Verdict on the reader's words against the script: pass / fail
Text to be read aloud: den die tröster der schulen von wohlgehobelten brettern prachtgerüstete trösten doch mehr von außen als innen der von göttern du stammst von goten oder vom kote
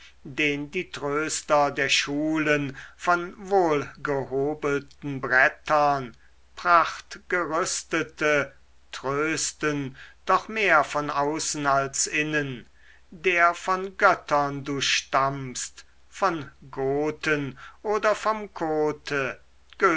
pass